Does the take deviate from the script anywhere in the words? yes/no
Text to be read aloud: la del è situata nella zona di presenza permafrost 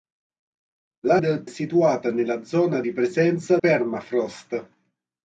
no